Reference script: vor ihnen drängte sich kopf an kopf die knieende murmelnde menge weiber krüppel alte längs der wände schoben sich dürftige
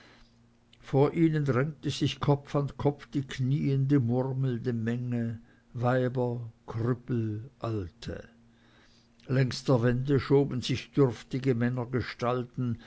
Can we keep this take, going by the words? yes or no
yes